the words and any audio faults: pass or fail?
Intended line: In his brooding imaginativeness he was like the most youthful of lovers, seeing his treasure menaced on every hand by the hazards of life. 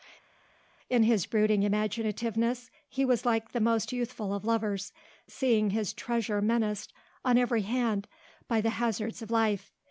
pass